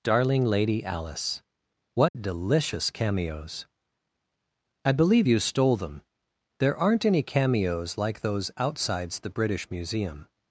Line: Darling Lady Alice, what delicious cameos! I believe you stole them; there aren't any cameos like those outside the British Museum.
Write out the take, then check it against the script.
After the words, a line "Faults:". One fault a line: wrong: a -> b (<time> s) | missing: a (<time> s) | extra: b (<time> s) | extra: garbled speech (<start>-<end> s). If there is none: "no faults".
Darling Lady Alice, what delicious cameos! I believe you stole them; there aren't any cameos like those outsides the British Museum.
Faults:
wrong: outside -> outsides (8.6 s)